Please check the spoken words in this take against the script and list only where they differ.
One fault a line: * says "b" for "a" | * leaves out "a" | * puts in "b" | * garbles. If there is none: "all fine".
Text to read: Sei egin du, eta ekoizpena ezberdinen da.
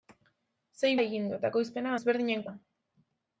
all fine